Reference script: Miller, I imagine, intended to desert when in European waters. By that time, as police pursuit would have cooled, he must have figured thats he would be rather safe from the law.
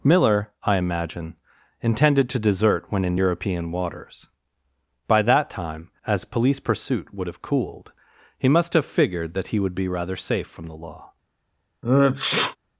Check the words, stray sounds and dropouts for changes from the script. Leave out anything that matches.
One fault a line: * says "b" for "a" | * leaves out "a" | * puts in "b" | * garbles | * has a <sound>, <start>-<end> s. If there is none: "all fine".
* says "that" for "thats"
* has a sneeze, 11.8-12.6 s